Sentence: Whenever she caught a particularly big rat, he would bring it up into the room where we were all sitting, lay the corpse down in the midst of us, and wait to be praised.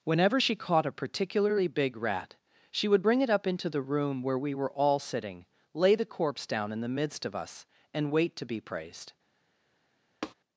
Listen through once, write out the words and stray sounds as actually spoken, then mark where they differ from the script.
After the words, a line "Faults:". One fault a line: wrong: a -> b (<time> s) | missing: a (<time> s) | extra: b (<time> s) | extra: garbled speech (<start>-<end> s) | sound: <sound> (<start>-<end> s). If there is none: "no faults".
Whenever she caught a particularly big rat, she would bring it up into the room where we were all sitting, lay the corpse down in the midst of us, and wait to be praised.
Faults:
wrong: he -> she (2.7 s)
sound: tap (10.2-10.3 s)